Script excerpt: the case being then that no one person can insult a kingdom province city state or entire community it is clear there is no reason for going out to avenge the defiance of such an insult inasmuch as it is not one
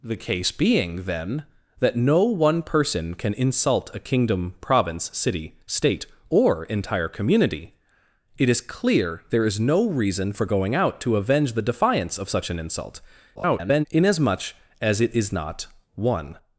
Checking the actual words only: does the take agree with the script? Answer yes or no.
no